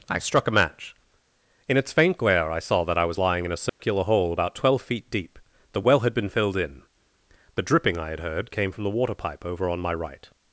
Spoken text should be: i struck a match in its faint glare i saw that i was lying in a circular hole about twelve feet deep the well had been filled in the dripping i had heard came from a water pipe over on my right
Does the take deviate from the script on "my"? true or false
false